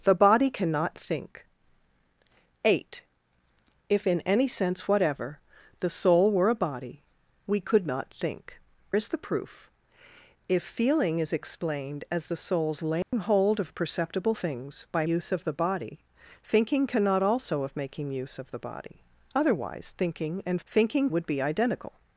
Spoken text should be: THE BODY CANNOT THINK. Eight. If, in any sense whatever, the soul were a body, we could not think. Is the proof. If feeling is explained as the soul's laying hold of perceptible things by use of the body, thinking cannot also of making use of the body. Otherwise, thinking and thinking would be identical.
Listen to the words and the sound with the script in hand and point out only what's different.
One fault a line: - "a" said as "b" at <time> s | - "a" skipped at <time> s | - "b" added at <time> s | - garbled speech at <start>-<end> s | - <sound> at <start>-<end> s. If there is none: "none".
- dropout at 13.0-13.1 s